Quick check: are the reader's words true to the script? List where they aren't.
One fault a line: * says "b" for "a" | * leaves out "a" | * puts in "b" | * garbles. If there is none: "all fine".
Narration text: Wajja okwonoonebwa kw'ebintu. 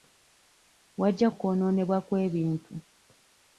all fine